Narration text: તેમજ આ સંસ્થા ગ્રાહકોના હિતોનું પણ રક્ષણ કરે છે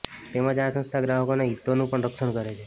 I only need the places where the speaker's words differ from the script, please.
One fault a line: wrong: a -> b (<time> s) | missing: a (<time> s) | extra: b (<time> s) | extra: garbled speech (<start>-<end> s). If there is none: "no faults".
no faults